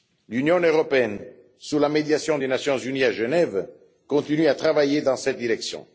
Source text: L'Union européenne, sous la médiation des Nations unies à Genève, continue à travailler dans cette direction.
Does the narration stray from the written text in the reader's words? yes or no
no